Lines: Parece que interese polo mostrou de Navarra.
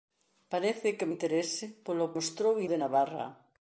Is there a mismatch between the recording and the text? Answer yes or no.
no